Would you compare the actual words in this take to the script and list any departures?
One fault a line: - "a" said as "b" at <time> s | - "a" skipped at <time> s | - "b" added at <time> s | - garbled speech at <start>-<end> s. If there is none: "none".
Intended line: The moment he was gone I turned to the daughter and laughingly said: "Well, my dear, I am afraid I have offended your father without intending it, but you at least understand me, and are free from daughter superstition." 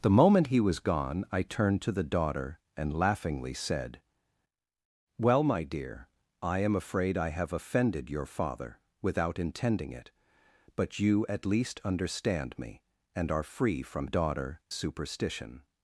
none